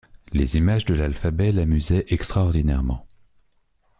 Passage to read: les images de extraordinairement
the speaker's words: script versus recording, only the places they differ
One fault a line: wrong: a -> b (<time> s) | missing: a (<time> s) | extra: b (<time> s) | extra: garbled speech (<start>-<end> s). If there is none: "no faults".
extra: l'alphabet l'amusaient (0.9 s)